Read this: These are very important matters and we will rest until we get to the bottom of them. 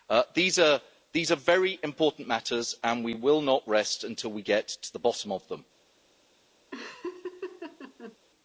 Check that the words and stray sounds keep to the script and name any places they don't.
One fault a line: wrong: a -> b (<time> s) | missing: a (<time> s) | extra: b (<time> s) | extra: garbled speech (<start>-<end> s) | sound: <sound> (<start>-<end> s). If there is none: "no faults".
extra: not (3.4 s)
sound: laugh (6.7-8.2 s)